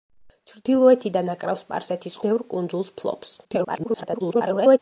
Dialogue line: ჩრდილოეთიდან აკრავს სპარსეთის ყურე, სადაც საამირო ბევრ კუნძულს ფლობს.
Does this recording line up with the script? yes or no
no